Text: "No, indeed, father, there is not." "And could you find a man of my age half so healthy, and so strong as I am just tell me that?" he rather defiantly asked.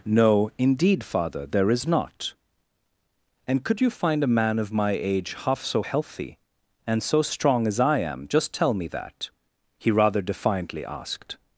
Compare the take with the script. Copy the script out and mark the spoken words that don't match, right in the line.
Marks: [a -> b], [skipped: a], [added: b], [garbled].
"No, indeed, father, there is not." "And could you find a man of my age half so healthy, and so strong as I am just tell me that?" he rather defiantly asked.